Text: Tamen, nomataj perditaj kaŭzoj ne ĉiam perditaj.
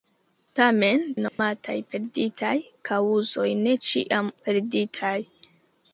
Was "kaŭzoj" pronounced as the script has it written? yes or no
yes